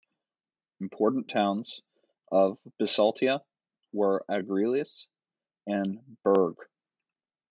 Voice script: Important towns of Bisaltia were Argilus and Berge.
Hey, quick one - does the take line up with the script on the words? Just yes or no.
yes